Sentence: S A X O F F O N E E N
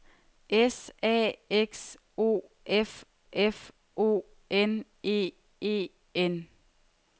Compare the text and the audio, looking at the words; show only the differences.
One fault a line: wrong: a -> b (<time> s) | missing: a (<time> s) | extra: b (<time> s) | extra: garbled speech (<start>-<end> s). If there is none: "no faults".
no faults